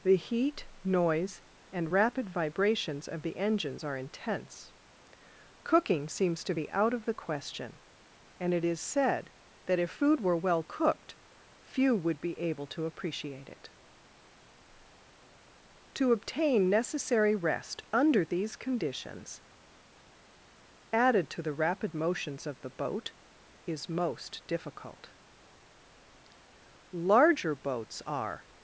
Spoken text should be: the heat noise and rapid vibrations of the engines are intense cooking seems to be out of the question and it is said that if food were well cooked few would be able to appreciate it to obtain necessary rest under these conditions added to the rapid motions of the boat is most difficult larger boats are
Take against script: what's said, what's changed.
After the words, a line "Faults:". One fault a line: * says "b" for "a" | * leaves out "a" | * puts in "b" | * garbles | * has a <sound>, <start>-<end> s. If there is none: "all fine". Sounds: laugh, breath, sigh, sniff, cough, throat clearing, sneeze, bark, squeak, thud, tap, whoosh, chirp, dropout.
the heat noise and rapid vibrations of the engines are intense cooking seems to be out of the question and it is said that if food were well cooked few would be able to appreciate it to obtain necessary rest under these conditions added to the rapid motions of the boat is most difficult larger boats are
Faults:
all fine